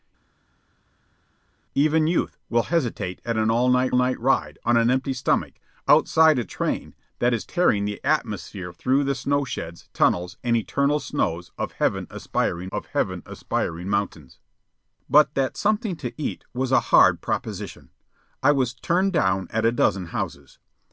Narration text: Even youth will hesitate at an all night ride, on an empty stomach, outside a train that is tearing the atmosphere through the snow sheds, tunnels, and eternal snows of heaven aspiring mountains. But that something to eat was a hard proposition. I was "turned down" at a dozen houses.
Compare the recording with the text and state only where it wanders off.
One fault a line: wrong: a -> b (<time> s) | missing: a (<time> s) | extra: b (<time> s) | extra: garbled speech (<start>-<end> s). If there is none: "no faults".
extra: night (3.9 s)
extra: of heaven aspiring (12.7 s)